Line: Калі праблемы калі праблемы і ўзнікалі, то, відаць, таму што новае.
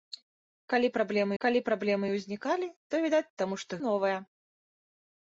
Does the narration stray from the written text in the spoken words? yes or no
no